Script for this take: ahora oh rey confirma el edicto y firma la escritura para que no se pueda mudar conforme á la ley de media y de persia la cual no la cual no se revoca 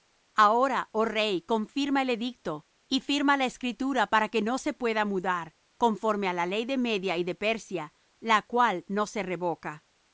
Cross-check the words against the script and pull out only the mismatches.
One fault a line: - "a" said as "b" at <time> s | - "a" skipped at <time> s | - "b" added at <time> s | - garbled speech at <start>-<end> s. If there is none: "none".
- "la cual no" skipped at 9.1 s